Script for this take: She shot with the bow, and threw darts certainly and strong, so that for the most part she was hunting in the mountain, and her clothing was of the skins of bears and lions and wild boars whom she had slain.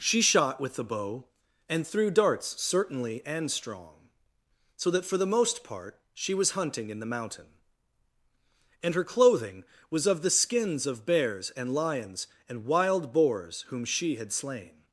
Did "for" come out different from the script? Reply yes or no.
no